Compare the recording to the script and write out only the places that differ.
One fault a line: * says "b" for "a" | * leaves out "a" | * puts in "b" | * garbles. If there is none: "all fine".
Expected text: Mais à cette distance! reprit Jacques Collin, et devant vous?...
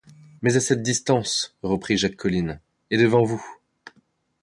all fine